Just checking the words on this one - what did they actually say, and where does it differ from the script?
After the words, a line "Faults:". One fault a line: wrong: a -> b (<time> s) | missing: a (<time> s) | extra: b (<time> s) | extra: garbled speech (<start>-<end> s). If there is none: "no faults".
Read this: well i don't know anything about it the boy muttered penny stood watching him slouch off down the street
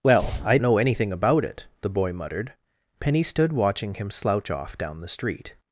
well i know anything about it the boy muttered penny stood watching him slouch off down the street
Faults:
missing: don't (0.6 s)